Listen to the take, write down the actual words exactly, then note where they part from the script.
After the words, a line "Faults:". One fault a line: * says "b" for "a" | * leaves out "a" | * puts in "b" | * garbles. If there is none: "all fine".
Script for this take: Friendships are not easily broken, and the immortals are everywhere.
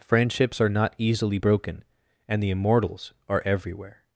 Friendships are not easily broken, and the immortals are everywhere.
Faults:
all fine